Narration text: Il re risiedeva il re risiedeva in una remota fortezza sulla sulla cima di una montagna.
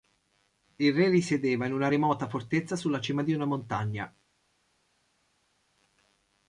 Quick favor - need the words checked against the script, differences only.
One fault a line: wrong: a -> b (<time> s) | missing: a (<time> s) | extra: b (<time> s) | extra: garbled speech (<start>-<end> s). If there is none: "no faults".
missing: il re risiedeva (1.7 s)
missing: sulla (3.0 s)